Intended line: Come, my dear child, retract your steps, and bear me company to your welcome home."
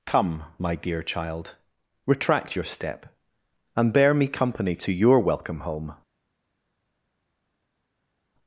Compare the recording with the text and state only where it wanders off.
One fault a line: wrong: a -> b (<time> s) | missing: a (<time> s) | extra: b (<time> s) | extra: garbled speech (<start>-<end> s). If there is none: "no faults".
wrong: steps -> step (2.6 s)